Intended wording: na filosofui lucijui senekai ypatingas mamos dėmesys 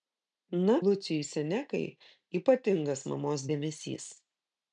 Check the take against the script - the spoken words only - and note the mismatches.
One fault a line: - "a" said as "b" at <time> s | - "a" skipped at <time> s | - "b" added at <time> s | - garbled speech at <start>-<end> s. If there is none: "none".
- "filosofui" skipped at 0.8 s